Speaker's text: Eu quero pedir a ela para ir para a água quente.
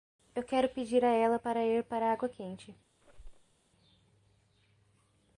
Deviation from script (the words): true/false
false